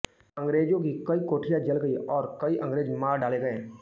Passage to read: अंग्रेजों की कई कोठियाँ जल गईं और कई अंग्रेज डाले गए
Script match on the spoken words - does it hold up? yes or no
no